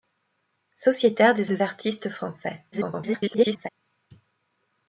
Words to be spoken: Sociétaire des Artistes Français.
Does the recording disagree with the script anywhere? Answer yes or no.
yes